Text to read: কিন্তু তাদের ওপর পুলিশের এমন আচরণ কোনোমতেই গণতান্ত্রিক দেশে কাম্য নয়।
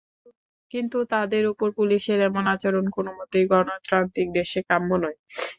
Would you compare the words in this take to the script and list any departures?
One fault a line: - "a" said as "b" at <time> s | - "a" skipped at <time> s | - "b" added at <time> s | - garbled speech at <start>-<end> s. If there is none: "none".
none